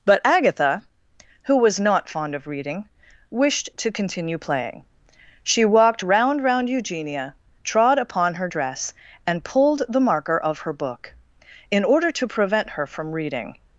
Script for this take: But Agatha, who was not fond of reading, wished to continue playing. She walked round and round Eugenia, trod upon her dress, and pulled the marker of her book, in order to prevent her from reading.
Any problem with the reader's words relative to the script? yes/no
yes